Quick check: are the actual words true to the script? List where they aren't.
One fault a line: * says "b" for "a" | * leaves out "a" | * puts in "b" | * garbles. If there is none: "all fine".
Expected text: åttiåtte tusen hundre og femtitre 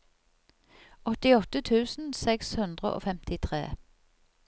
* puts in "seks"